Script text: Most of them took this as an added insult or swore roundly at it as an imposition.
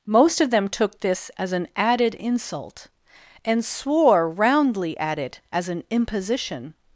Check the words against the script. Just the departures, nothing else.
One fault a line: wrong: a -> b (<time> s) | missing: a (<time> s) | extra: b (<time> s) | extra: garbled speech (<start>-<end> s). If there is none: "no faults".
wrong: or -> and (3.5 s)